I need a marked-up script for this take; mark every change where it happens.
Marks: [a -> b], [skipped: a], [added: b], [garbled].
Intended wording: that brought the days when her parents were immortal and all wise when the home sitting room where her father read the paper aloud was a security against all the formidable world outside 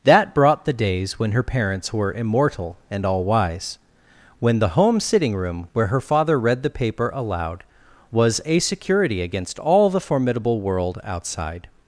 that brought the days when her parents were immortal and all wise when the home sitting room where her father read the paper aloud was a security against all the formidable world outside